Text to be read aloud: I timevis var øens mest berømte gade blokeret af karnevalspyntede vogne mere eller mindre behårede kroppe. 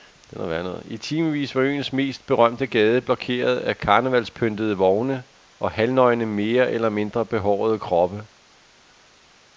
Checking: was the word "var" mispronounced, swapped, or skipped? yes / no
no